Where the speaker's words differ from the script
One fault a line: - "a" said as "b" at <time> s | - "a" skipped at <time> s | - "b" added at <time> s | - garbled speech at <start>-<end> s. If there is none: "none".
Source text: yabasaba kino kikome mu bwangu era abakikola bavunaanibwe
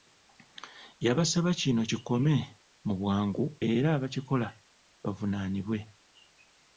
none